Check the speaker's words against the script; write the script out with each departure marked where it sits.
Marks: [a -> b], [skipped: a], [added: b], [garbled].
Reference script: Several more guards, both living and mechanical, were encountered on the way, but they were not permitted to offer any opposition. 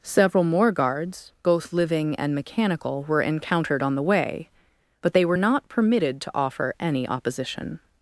Several more guards, both living and mechanical, were encountered on the way, but they were not permitted to offer any opposition.